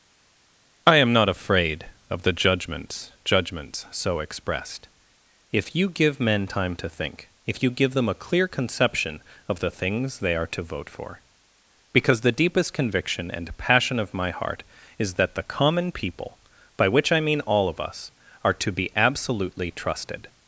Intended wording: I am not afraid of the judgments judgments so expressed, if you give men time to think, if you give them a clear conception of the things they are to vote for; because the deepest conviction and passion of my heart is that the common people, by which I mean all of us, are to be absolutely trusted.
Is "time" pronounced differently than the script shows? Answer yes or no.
no